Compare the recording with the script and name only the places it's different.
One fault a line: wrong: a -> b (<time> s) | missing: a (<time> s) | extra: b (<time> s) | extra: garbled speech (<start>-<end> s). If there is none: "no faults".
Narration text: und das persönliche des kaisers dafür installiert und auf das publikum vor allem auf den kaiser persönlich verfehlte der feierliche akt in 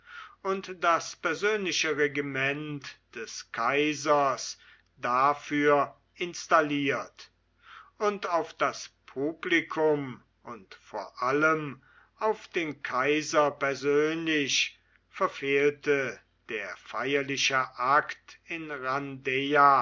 extra: regiment (2.0 s)
extra: und (10.4 s)